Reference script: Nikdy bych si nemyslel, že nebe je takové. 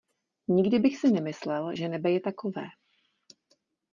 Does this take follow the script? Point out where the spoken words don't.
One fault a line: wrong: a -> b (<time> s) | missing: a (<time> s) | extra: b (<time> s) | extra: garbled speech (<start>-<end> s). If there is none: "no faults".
no faults